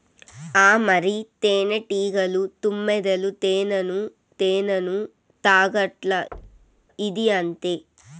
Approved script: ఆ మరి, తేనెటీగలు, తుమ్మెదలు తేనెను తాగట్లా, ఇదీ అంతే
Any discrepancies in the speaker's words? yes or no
yes